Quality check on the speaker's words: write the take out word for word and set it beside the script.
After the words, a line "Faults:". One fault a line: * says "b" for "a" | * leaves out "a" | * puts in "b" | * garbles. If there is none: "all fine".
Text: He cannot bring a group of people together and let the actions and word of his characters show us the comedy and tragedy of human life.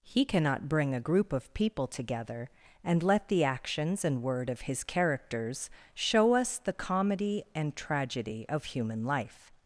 He cannot bring a group of people together and let the actions and word of his characters show us the comedy and tragedy of human life.
Faults:
all fine